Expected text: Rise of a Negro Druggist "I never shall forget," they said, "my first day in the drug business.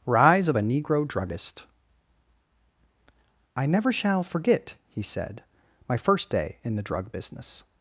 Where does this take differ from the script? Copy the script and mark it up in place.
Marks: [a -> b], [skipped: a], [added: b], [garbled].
Rise of a Negro Druggist "I never shall forget," [they -> he] said, "my first day in the drug business.